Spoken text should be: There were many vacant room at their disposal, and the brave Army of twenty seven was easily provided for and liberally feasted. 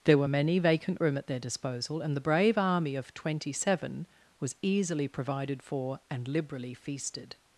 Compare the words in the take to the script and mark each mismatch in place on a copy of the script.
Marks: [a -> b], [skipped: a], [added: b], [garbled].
There were many vacant room at their disposal, and the brave Army of twenty seven was easily provided for and liberally feasted.